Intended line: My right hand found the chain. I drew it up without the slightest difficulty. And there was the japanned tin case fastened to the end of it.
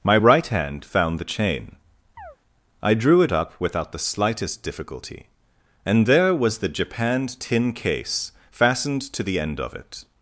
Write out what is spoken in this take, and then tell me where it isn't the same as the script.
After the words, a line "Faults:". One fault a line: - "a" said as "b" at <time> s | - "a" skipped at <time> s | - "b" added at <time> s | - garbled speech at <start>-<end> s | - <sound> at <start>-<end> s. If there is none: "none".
My right hand found the chain. I drew it up without the slightest difficulty. And there was the japanned tin case fastened to the end of it.
Faults:
- chirp at 2.2-2.4 s